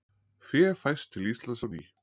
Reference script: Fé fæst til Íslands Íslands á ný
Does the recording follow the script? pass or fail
fail